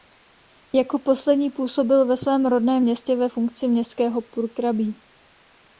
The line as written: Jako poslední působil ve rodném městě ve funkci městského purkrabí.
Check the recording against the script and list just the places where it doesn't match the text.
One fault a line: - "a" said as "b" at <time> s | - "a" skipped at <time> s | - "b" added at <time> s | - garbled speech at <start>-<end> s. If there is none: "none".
- "svém" added at 2.2 s